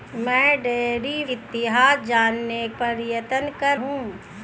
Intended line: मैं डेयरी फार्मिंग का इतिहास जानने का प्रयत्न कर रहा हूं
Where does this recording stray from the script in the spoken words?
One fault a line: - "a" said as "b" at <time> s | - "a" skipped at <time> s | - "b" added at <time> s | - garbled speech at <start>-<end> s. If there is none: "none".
- "फार्मिंग का" skipped at 1.2 s
- "का" skipped at 2.7 s
- "रहा" skipped at 3.8 s